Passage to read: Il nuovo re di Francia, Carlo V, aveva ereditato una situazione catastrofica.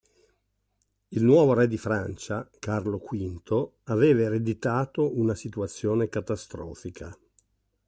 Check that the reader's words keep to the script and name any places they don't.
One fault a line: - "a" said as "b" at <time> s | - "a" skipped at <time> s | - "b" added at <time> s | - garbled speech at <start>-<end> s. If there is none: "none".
none